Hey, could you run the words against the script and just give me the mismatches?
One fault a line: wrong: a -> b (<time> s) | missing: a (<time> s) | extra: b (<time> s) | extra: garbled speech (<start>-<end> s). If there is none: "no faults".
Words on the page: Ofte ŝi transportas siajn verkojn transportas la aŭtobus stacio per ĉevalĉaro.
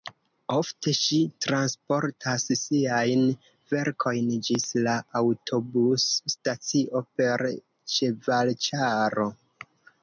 wrong: transportas -> ĝis (4.5 s)